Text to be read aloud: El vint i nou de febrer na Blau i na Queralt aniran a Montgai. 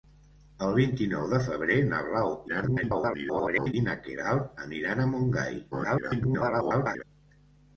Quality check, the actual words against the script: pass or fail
fail